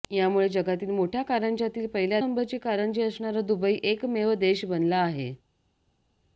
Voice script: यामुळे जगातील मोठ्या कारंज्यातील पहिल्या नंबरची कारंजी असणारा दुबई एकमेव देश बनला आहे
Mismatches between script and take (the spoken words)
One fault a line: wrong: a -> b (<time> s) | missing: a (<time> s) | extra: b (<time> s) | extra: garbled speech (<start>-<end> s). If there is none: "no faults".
no faults